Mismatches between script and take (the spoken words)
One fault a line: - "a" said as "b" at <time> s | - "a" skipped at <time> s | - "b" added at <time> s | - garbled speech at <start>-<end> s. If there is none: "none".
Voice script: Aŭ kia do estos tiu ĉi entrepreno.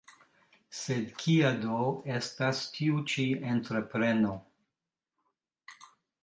- "Aŭ" said as "Sed" at 0.8 s
- "estos" said as "estas" at 2.2 s